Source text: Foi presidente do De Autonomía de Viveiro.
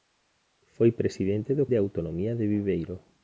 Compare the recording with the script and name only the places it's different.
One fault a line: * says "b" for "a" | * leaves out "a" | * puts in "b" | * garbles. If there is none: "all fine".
all fine